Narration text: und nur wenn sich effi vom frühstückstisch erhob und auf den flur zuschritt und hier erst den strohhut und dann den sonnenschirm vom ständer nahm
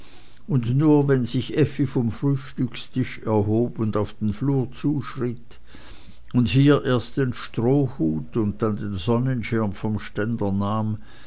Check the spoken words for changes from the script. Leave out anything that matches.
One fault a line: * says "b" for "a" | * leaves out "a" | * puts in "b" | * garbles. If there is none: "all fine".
all fine